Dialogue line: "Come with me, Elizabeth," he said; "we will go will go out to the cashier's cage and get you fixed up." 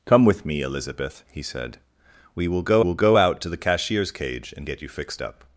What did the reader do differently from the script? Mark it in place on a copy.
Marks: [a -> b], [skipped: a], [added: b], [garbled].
"Come with me, Elizabeth," he said; "we will go will go out to the cashier's cage and get you fixed up."